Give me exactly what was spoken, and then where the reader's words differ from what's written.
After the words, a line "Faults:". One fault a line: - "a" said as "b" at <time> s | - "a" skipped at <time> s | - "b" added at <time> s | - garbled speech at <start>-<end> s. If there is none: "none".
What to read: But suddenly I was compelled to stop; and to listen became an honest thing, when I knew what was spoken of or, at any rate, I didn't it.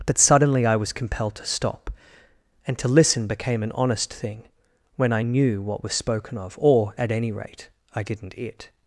But suddenly I was compelled to stop; and to listen became an honest thing, when I knew what was spoken of or, at any rate, I didn't it.
Faults:
none